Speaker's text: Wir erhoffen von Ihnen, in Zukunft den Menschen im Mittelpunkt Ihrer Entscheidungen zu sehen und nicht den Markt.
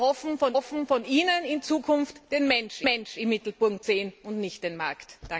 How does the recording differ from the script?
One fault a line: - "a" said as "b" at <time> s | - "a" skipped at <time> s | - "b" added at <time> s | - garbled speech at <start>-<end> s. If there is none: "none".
- "erhoffen von" added at 0.5 s
- "Menschen" added at 2.8 s
- "Ihrer Entscheidungen zu" skipped at 3.9 s